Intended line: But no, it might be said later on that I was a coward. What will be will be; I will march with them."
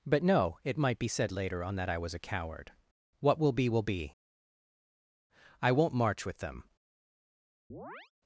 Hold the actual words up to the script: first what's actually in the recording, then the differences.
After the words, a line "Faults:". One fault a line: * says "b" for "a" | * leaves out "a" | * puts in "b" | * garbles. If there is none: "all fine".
But no, it might be said later on that I was a coward. What will be will be; I won't march with them."
Faults:
* says "won't" for "will"